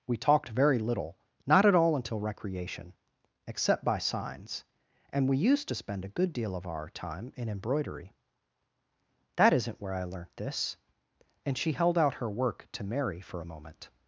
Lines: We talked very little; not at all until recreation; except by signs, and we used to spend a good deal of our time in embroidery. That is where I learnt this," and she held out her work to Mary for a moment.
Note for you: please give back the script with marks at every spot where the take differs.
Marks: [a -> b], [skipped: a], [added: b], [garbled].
We talked very little; not at all until recreation; except by signs, and we used to spend a good deal of our time in embroidery. That [is -> isn't] where I learnt this," and she held out her work to Mary for a moment.